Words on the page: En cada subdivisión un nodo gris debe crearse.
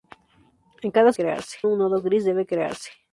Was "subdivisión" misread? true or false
true